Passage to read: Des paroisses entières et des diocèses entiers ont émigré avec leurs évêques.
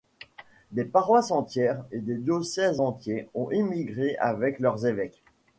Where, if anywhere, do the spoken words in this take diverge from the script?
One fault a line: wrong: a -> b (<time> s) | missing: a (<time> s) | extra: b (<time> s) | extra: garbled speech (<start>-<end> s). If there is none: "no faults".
no faults